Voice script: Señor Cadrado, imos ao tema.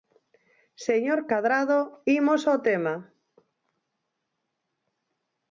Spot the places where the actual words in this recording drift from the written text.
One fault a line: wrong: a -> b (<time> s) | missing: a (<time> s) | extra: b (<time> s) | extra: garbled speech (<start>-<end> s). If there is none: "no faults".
no faults